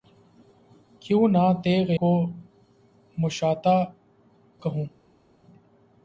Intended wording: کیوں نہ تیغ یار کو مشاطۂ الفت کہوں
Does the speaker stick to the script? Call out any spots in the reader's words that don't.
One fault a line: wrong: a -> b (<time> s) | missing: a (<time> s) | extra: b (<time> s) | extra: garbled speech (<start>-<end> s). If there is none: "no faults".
missing: یار (1.9 s)
missing: الفت (3.8 s)